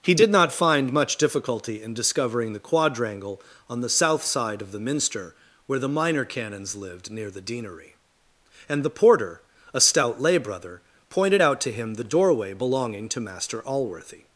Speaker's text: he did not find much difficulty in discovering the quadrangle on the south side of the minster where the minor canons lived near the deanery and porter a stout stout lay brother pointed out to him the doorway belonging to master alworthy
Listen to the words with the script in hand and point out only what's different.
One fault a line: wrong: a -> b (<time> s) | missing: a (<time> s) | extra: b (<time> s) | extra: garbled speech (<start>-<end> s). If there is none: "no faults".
extra: the (8.8 s)
missing: stout (10.2 s)